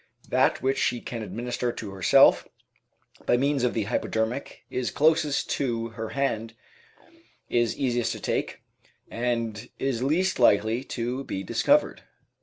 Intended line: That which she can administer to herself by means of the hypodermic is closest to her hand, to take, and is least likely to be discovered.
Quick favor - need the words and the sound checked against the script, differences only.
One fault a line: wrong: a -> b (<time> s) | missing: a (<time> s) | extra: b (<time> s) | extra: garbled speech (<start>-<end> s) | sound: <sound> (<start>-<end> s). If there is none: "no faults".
extra: is easiest (7.5 s)